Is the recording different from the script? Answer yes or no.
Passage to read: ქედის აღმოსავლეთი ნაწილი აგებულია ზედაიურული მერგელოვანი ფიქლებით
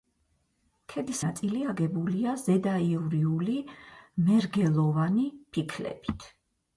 yes